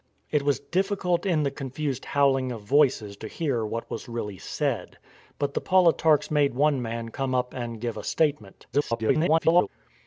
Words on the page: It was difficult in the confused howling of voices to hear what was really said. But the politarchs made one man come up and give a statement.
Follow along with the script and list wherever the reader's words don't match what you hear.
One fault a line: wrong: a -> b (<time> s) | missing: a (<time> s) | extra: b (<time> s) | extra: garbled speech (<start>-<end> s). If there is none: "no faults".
extra: garbled speech (8.7-9.7 s)